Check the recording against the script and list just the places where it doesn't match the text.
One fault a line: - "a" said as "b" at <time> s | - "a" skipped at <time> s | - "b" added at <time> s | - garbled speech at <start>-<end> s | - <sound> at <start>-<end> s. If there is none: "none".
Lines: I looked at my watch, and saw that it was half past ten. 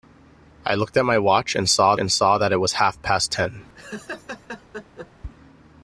- "and saw" added at 2.0 s
- laugh at 3.7-5.1 s